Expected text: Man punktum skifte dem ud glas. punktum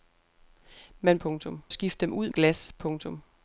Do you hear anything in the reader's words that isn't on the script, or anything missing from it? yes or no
no